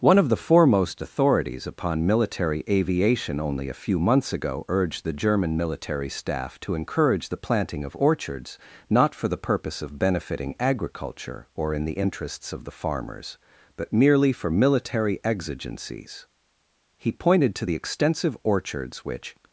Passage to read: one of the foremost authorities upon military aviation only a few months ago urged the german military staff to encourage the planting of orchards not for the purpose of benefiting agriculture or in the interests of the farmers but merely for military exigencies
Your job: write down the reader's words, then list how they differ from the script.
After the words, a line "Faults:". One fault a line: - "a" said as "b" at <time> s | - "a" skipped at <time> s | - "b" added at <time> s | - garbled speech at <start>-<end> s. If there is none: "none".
one of the foremost authorities upon military aviation only a few months ago urged the german military staff to encourage the planting of orchards not for the purpose of benefiting agriculture or in the interests of the farmers but merely for military exigencies he pointed to the extensive orchards which
Faults:
- "he pointed to the extensive orchards which" added at 17.0 s